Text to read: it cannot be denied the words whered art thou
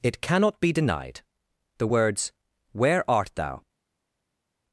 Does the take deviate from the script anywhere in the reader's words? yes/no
yes